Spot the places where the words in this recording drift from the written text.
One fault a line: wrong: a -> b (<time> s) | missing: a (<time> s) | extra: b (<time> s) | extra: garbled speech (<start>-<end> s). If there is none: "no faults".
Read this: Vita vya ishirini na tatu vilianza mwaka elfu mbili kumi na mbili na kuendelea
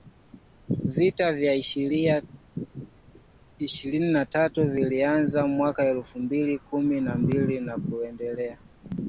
no faults